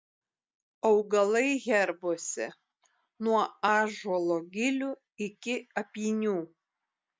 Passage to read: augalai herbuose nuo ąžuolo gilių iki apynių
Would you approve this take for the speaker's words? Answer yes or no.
yes